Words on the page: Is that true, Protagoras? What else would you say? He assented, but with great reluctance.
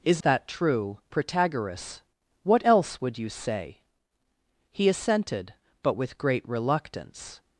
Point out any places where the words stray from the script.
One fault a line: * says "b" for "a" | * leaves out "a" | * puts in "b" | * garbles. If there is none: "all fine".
all fine